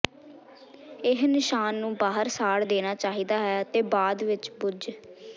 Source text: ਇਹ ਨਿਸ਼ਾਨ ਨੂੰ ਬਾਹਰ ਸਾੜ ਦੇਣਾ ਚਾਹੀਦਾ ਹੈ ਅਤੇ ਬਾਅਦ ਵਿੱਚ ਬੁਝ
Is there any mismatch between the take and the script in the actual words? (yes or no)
no